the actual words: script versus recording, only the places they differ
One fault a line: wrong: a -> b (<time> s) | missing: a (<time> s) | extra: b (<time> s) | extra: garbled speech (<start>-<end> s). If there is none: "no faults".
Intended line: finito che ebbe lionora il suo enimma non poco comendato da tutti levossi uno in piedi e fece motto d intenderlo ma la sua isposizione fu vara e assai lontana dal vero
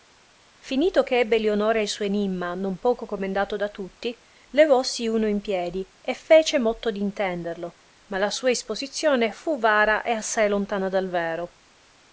no faults